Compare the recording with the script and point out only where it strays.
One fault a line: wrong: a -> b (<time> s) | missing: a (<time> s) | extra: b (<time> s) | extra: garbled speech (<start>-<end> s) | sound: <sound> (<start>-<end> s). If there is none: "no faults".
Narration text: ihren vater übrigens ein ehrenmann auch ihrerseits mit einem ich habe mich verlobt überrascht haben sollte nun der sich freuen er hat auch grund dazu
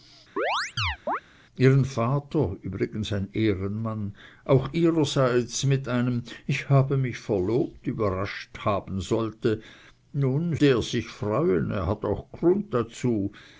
sound: chirp (0.4-1.2 s)